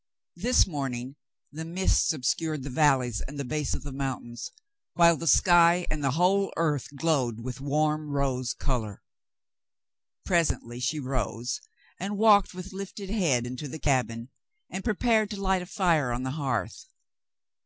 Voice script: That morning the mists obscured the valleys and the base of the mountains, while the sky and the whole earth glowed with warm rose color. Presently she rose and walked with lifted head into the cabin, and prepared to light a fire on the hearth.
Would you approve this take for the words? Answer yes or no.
no